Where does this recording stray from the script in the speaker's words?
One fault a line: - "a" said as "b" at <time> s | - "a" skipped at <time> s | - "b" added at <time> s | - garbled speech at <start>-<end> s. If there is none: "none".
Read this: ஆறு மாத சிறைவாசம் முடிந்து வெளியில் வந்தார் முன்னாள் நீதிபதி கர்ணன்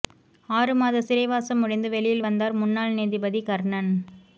none